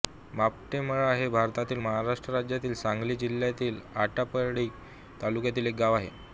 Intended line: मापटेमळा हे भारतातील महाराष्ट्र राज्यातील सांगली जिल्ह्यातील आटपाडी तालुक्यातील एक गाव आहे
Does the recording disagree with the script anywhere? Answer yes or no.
no